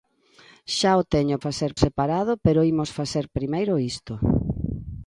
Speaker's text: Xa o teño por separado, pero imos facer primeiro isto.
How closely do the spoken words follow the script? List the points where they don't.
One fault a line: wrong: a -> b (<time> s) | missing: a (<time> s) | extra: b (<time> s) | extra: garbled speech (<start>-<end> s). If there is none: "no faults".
wrong: por -> facer (1.4 s)